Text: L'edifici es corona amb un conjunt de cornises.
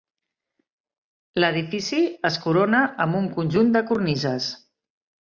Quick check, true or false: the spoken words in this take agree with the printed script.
true